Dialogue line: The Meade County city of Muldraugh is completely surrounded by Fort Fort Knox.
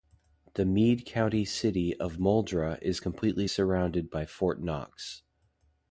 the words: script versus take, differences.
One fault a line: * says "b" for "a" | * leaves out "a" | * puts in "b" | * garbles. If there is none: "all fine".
* leaves out "Fort"